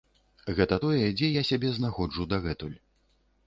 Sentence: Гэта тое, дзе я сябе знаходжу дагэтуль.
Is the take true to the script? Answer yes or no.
yes